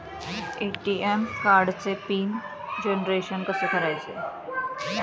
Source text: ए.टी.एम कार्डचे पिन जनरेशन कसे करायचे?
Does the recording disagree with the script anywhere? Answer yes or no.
no